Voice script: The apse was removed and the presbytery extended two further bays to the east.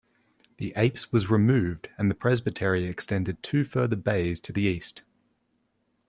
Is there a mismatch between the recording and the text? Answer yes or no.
no